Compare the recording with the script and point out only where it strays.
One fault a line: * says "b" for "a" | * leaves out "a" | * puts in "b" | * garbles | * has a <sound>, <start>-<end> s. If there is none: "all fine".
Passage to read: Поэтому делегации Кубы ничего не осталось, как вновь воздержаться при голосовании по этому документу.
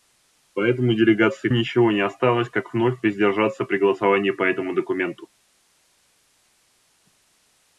* leaves out "Кубы"